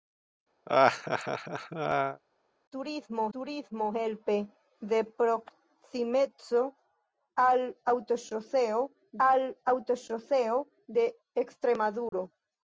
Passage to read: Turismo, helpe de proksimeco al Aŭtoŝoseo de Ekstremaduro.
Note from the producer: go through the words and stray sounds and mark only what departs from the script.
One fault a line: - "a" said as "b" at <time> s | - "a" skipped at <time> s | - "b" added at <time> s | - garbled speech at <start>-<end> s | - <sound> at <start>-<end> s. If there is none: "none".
- laugh at 0.7-2.2 s
- "turismo" added at 3.4 s
- "al Aŭtoŝoseo" added at 9.3 s
- dropout at 12.1-12.1 s